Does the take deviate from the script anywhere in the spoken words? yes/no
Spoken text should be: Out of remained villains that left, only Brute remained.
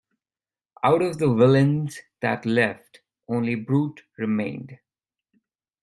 yes